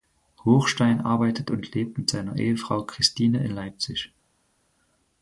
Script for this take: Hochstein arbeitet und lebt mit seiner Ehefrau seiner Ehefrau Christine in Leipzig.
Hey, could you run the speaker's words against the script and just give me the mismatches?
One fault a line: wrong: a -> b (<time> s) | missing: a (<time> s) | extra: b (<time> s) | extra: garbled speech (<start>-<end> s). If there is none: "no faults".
missing: seiner Ehefrau (2.8 s)